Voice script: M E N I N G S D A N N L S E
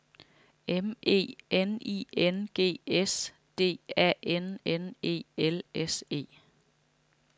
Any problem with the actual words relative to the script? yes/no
yes